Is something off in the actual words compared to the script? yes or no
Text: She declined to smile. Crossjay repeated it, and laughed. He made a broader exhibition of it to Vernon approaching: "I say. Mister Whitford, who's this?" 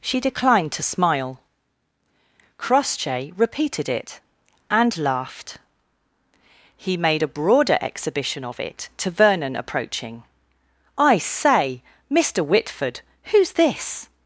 no